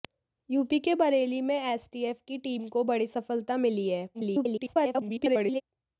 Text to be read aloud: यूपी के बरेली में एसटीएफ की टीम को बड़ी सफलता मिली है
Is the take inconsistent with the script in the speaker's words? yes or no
yes